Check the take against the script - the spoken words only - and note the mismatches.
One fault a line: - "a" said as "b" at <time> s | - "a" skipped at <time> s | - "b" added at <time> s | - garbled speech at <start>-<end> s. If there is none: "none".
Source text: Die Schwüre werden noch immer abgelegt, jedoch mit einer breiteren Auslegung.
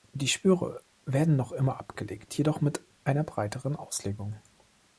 none